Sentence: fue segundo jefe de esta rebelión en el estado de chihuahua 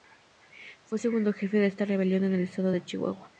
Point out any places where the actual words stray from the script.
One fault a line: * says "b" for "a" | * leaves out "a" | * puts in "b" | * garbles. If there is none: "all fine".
all fine